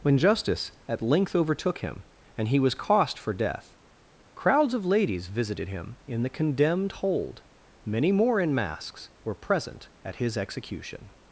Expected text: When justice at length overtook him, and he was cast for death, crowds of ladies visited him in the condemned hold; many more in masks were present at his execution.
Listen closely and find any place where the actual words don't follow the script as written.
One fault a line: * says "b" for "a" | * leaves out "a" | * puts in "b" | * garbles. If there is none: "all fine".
* says "cost" for "cast"